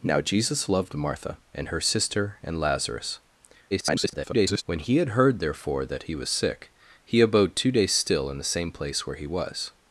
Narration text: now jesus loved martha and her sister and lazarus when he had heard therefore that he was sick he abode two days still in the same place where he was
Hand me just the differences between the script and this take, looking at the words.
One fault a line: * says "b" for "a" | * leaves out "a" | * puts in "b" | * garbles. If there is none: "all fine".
* garbles